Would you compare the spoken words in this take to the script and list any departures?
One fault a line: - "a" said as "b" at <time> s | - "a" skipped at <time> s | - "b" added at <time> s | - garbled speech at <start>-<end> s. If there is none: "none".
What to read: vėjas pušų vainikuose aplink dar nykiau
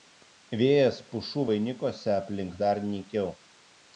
none